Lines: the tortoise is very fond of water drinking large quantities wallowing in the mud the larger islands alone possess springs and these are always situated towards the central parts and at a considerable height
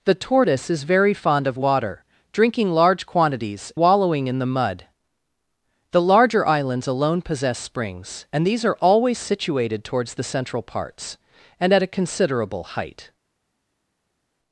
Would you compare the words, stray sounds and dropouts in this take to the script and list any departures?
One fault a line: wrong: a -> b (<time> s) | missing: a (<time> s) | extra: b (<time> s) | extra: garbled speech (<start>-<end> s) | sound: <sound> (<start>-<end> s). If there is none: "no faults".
no faults